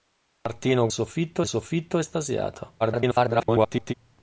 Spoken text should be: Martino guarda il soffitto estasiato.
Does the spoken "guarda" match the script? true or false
false